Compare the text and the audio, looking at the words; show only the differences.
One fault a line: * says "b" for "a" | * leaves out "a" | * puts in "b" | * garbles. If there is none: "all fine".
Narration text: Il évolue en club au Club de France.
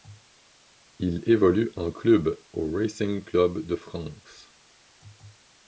* puts in "Racing"